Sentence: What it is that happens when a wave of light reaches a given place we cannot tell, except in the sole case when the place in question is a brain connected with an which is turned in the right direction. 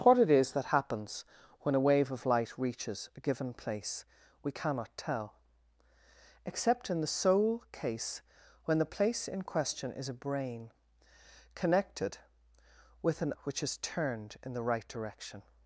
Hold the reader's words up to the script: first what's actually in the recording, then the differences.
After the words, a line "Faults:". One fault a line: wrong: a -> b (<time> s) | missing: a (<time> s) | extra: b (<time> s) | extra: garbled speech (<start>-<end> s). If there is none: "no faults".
What it is that happens when a wave of light reaches a given place we cannot tell, except in the sole case when the place in question is a brain connected with an which is turned in the right direction.
Faults:
no faults